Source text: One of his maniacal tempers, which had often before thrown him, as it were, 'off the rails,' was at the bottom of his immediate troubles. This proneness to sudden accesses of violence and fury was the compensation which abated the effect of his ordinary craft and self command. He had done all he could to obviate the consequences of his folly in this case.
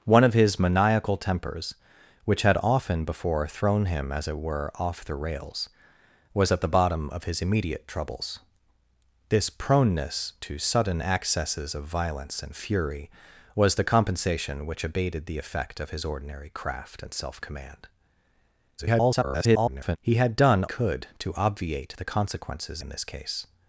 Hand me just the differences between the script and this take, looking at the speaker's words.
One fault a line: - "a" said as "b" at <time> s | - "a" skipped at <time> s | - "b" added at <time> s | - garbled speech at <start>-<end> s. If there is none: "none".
- garbled speech at 18.8-20.0 s
- "all he" skipped at 20.6 s
- "of his folly" skipped at 22.8 s